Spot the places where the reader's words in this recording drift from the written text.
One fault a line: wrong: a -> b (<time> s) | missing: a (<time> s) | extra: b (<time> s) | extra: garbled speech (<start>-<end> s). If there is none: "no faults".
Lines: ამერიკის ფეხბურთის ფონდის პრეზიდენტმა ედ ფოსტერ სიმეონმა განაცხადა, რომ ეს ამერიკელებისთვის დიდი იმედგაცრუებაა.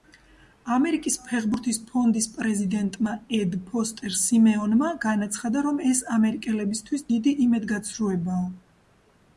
no faults